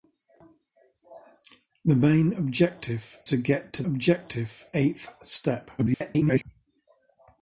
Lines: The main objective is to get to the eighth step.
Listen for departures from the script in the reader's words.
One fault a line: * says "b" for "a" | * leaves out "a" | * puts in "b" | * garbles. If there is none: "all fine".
* leaves out "is"
* says "objective" for "the"
* garbles